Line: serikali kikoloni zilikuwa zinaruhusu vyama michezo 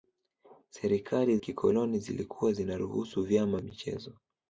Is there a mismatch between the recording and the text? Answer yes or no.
no